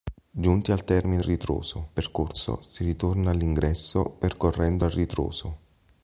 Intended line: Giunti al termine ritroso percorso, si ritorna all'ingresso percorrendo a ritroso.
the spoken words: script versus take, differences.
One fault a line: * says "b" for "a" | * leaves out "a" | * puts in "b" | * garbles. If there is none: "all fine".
all fine